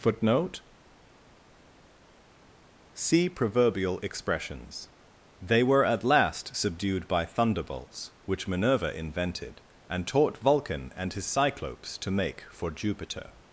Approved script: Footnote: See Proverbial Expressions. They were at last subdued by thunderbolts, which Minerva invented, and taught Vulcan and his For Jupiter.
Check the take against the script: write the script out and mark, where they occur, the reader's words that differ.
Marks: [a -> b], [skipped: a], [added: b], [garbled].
Footnote: See Proverbial Expressions. They were at last subdued by thunderbolts, which Minerva invented, and taught Vulcan and his [added: Cyclopes to make] For Jupiter.